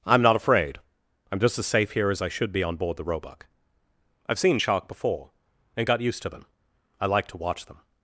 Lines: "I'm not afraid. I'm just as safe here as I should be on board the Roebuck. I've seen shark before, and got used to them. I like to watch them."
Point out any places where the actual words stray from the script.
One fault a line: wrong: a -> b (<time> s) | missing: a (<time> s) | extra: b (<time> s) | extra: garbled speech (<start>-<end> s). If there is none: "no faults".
no faults